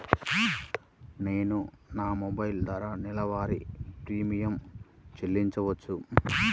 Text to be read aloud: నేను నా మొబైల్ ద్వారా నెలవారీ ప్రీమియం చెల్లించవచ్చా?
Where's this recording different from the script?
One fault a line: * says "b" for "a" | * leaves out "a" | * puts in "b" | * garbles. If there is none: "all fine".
all fine